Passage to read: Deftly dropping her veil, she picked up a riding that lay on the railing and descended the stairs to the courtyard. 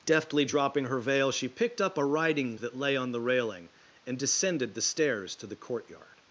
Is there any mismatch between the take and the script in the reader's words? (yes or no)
no